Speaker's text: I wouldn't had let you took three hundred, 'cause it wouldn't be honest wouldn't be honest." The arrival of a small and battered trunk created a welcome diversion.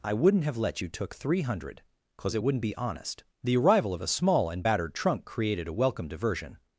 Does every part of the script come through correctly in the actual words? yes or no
no